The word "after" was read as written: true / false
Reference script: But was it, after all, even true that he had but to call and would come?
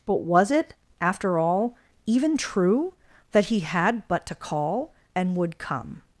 true